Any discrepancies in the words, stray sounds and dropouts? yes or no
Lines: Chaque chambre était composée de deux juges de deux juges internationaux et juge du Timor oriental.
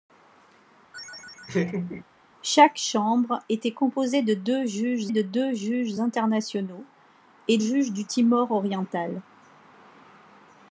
yes